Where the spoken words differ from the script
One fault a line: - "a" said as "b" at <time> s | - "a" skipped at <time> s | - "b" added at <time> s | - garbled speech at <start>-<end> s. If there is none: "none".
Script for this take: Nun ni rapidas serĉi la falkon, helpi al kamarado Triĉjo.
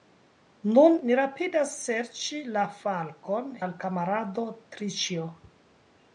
- "helpi" skipped at 3.5 s